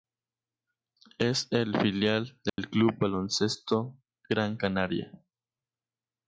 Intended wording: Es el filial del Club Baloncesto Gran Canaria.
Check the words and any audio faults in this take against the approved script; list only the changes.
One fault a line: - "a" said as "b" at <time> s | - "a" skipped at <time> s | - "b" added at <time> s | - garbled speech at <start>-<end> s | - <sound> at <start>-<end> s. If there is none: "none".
- dropout at 2.5-2.6 s